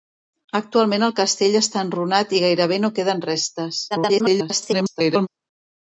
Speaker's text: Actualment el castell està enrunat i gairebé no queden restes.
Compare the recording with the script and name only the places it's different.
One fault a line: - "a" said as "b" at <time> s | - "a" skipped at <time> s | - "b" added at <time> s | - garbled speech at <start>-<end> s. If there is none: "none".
- garbled speech at 3.9-5.3 s